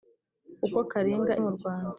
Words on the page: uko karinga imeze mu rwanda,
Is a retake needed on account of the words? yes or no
yes